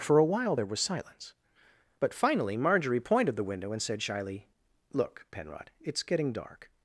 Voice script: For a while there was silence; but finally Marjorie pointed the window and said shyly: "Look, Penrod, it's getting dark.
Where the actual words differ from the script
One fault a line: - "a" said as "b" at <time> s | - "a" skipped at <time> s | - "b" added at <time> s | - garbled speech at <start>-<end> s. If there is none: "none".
none